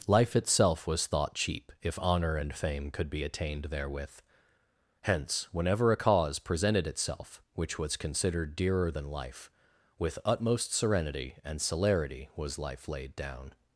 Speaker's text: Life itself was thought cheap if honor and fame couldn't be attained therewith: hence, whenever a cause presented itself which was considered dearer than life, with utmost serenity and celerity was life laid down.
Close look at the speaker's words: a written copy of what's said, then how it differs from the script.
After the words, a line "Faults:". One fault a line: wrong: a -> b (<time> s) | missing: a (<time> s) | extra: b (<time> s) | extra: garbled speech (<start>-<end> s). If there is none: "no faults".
Life itself was thought cheap if honor and fame could be attained therewith: hence, whenever a cause presented itself which was considered dearer than life, with utmost serenity and celerity was life laid down.
Faults:
wrong: couldn't -> could (2.9 s)